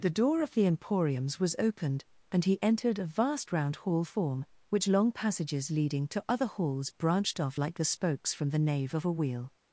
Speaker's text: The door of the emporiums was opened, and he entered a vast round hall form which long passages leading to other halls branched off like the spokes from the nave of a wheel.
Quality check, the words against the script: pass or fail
pass